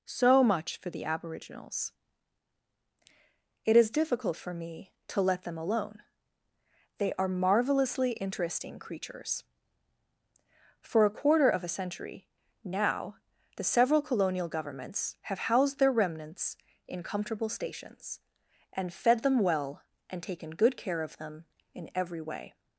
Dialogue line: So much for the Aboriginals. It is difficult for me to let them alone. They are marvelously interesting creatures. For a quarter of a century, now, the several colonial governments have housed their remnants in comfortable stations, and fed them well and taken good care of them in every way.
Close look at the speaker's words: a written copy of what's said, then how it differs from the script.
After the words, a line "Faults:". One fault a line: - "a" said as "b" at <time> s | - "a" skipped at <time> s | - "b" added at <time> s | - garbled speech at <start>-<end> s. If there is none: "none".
So much for the Aboriginals. It is difficult for me to let them alone. They are marvelously interesting creatures. For a quarter of a century, now, the several colonial governments have housed their remnants in comfortable stations, and fed them well and taken good care of them in every way.
Faults:
none